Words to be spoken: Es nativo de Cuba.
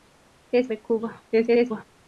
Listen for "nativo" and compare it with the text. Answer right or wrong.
wrong